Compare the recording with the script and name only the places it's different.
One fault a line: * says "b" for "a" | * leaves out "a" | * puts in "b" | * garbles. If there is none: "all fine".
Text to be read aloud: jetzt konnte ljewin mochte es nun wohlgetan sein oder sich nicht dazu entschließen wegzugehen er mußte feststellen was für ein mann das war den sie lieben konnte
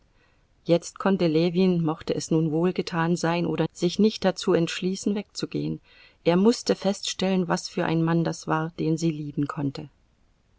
all fine